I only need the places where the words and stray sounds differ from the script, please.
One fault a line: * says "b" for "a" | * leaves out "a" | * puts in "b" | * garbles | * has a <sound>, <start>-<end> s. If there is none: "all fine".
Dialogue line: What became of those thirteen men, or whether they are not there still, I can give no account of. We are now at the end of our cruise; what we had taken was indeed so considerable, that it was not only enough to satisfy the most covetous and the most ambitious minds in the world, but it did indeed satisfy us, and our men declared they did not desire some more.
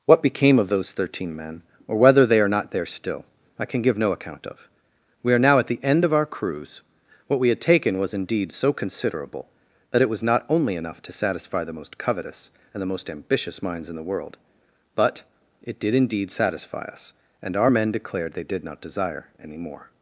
* says "any" for "some"